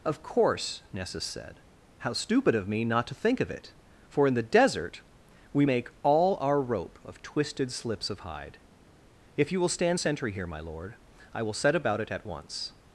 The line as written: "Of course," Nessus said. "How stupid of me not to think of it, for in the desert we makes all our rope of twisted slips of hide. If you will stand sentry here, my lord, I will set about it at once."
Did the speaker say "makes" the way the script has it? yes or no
no